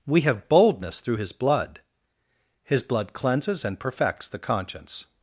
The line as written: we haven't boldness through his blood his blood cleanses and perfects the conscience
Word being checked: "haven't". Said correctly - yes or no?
no